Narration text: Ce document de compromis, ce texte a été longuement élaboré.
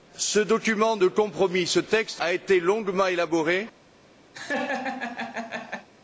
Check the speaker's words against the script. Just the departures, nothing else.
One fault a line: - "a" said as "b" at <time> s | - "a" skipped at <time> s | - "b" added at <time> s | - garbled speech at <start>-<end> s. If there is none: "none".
none